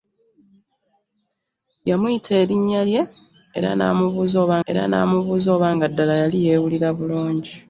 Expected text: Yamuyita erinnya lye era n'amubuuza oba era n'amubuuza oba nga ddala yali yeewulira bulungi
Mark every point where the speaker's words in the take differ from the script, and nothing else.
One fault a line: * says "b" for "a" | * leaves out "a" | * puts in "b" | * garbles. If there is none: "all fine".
all fine